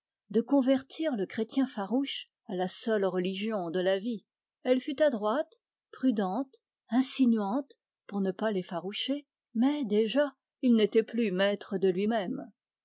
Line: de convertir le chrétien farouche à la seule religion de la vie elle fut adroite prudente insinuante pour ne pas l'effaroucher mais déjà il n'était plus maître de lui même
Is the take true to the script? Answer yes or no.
yes